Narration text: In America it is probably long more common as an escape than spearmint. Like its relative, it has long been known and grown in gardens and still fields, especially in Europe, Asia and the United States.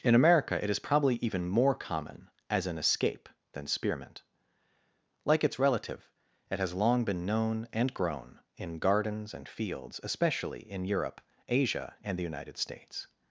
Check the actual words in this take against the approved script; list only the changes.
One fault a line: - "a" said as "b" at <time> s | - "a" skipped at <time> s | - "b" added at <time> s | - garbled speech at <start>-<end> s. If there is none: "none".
- "long" said as "even" at 1.2 s
- "still" skipped at 9.5 s